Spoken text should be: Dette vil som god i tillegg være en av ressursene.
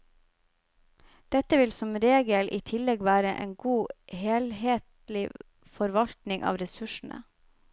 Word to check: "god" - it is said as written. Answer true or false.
false